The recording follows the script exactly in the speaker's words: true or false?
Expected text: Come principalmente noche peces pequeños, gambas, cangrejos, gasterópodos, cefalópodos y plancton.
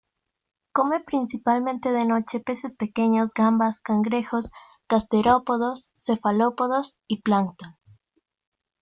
false